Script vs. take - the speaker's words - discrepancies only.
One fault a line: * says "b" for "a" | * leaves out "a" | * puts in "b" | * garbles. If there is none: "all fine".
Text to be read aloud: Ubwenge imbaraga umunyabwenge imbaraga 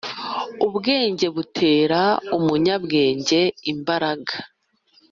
* says "butera" for "imbaraga"